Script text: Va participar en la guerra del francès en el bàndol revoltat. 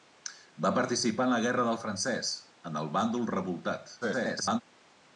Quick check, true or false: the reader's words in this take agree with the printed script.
false